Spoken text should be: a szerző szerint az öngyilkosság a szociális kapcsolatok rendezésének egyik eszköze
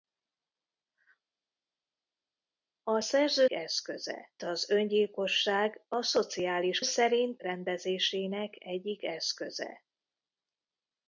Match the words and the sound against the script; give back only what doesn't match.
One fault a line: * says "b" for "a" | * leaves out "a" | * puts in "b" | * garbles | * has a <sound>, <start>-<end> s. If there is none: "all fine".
* says "eszköze" for "szerint"
* says "szerint" for "kapcsolatok"